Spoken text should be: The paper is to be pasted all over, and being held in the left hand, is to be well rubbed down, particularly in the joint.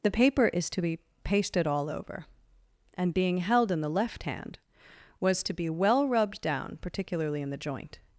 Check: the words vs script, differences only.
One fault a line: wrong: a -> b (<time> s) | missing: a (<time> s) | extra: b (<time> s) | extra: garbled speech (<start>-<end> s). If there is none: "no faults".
wrong: is -> was (5.2 s)